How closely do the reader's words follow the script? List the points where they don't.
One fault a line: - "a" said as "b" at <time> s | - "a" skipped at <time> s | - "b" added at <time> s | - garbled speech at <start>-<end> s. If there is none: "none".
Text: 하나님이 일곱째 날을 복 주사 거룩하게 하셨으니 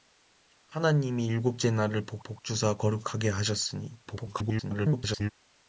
- "복" added at 2.2 s
- garbled speech at 4.1-5.3 s